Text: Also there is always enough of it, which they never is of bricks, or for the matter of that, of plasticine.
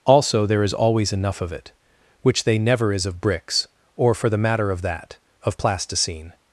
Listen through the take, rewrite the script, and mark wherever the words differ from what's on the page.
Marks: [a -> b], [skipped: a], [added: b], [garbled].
Also there is always enough of it, which they never is of bricks, or for the matter of that, of plasticine.